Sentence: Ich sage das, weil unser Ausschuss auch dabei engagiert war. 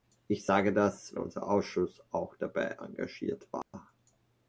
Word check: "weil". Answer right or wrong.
wrong